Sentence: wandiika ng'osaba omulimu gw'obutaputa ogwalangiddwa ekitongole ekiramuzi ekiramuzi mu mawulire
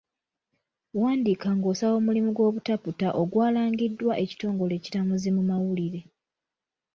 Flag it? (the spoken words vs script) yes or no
yes